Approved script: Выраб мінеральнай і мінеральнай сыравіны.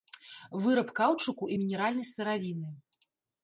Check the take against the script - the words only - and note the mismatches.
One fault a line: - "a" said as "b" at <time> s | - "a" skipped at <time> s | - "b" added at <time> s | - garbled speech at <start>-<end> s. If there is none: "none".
- "мінеральнай" said as "каўчуку" at 1.0 s